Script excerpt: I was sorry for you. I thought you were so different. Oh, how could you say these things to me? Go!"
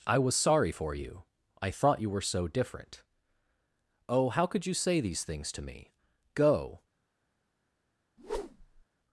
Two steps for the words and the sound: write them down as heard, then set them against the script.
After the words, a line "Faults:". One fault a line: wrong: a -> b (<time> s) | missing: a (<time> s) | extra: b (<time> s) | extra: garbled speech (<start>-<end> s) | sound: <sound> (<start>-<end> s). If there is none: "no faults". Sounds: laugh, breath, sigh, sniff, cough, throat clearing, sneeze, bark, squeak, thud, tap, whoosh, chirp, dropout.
I was sorry for you. I thought you were so different. Oh, how could you say these things to me? Go!"
Faults:
sound: whoosh (8.2-8.9 s)